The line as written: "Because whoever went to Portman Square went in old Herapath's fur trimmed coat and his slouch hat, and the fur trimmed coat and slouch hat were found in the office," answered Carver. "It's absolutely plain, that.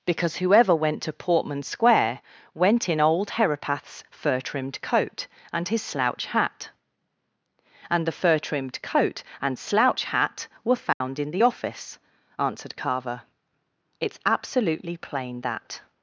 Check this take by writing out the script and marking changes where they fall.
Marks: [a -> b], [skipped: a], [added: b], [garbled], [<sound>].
"Because whoever went to Portman Square went in old Herapath's fur trimmed coat and his slouch hat, and the fur trimmed coat and slouch hat were found [dropout] in the office," answered Carver. "It's absolutely plain, that.